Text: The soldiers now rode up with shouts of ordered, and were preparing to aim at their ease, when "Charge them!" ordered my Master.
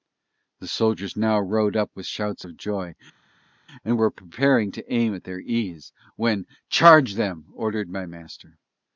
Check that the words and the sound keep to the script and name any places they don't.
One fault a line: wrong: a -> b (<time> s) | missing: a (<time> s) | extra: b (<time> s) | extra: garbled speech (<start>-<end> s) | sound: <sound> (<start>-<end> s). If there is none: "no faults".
wrong: ordered -> joy (2.6 s)